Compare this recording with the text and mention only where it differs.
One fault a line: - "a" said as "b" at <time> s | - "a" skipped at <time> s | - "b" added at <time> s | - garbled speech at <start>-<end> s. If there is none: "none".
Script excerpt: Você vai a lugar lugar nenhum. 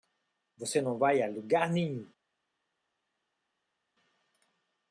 - "não" added at 0.8 s
- "lugar" skipped at 1.7 s